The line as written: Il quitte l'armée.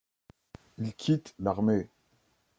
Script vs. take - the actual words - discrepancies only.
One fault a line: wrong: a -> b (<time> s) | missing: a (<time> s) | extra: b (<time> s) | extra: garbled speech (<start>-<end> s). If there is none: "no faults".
no faults